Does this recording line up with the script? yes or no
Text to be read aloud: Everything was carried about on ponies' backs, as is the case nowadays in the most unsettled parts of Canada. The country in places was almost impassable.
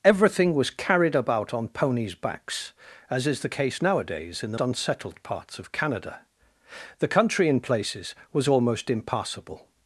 no